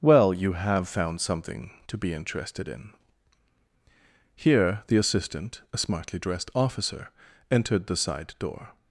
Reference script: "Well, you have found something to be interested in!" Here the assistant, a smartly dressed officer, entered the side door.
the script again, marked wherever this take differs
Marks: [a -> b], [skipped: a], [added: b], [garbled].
"Well, you have found something to be interested in!" Here the assistant, a smartly dressed officer, entered the side door.